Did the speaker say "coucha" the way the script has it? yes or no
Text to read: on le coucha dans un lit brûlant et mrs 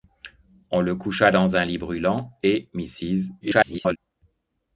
yes